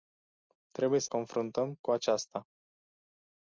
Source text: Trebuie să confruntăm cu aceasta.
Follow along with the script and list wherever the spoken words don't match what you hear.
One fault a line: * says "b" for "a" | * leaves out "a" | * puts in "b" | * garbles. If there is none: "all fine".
all fine